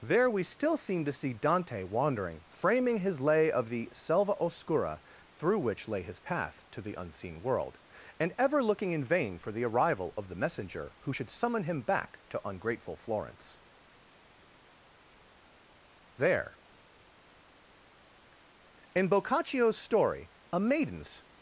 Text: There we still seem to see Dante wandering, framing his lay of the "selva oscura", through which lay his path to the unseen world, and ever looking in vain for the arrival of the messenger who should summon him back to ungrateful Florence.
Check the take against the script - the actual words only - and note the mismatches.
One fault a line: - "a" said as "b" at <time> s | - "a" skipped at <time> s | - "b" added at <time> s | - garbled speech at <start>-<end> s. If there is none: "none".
- "There in Boccaccio's story a maiden's" added at 16.2 s